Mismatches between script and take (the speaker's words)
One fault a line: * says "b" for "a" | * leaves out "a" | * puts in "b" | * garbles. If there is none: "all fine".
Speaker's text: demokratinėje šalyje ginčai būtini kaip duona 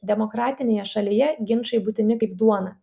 all fine